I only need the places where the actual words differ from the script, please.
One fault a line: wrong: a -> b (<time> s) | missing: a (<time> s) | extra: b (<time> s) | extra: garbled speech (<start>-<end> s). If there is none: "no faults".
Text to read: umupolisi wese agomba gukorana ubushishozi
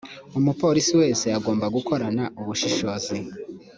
no faults